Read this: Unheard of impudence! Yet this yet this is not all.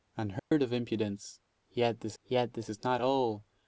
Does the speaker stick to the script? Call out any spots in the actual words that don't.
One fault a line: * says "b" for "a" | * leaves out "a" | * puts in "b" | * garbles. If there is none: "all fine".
all fine